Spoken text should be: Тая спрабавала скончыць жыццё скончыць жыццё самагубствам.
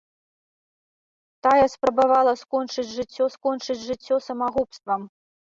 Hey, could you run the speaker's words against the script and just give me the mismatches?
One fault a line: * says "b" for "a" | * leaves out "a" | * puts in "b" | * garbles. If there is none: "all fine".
all fine